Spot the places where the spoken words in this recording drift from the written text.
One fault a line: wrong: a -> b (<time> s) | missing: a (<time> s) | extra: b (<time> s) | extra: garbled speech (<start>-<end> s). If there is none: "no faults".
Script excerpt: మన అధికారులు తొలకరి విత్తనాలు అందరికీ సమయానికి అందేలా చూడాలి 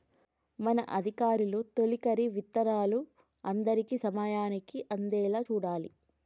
no faults